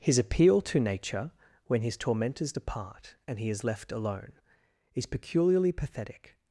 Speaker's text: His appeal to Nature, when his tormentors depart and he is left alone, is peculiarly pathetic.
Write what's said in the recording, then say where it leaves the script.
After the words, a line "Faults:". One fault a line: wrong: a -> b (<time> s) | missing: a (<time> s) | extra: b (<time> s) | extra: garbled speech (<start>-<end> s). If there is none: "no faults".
His appeal to Nature, when his tormentors depart and he is left alone, is peculiarly pathetic.
Faults:
no faults